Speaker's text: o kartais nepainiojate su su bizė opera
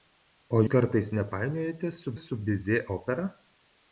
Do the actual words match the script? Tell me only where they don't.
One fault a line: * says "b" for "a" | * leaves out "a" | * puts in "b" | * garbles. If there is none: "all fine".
all fine